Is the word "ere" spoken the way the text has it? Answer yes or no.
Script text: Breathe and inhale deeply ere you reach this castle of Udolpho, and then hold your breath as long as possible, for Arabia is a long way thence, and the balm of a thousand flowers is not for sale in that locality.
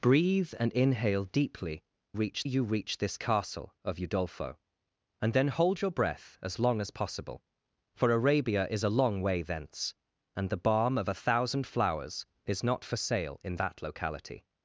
no